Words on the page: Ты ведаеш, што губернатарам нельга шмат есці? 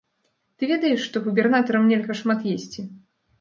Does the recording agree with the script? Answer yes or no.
yes